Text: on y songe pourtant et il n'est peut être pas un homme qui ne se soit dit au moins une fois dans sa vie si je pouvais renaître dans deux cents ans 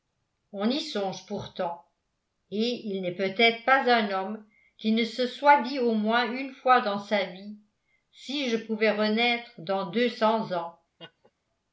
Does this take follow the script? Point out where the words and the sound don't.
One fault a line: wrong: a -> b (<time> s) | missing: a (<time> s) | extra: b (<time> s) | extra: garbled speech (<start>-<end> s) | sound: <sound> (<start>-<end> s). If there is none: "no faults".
sound: laugh (11.0-11.3 s)